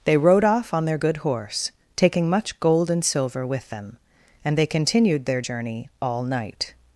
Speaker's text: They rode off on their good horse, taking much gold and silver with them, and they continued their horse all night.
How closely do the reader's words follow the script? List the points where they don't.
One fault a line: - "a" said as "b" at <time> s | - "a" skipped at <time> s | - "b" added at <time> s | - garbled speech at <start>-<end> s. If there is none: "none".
- "horse" said as "journey" at 5.4 s